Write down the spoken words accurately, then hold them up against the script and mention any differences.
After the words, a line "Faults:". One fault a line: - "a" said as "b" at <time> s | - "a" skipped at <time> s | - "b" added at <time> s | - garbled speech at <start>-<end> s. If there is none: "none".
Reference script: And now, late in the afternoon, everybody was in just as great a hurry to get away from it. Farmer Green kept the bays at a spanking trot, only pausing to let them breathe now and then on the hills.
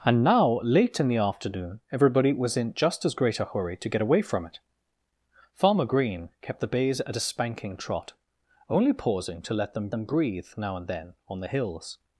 And now, late in the afternoon, everybody was in just as great a hurry to get away from it. Farmer Green kept the bays at a spanking trot, only pausing to let them them breathe now and then on the hills.
Faults:
- "them" added at 9.9 s